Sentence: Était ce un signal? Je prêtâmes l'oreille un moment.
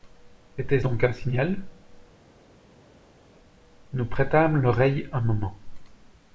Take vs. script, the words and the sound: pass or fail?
fail